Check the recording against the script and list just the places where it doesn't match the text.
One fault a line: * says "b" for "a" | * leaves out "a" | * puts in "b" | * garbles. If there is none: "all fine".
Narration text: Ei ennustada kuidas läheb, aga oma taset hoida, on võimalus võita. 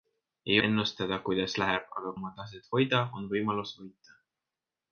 all fine